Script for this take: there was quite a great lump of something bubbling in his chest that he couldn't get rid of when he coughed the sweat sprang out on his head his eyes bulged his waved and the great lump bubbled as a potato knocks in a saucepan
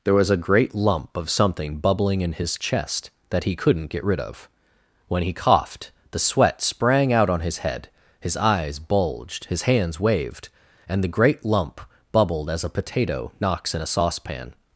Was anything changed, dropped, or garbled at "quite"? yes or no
yes